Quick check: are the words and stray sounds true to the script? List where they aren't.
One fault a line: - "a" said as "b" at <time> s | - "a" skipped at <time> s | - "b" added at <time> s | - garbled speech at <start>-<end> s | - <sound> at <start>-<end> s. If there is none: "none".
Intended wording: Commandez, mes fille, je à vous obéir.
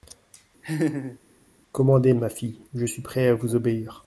- laugh at 0.6-1.2 s
- "mes" said as "ma" at 2.1 s
- "suis prêt" added at 2.8 s